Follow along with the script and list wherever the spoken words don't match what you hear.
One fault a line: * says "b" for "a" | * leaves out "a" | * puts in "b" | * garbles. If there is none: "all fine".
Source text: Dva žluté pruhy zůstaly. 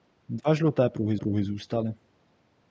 * puts in "pruhy"